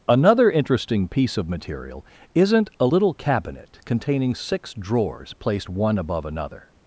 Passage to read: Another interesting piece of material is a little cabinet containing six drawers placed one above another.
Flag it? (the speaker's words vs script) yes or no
yes